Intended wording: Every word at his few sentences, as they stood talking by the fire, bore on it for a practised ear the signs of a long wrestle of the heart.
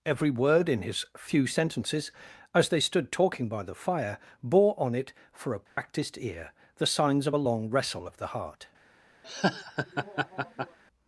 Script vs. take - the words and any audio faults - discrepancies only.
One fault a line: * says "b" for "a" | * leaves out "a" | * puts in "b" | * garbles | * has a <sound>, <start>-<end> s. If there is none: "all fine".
* says "in" for "at"
* has a dropout, 5.7-5.8 s
* has a laugh, 9.2-10.8 s